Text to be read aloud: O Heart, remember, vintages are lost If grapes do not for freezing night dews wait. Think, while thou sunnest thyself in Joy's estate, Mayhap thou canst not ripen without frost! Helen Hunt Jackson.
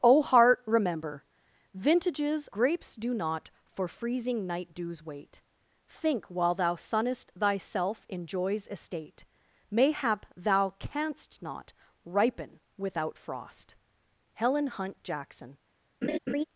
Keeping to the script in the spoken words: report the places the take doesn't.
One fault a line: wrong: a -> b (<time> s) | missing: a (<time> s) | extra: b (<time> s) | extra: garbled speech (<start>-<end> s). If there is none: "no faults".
missing: are lost If (2.5 s)